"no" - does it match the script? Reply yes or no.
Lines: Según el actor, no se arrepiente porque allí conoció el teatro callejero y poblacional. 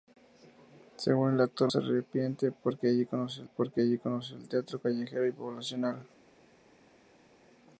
no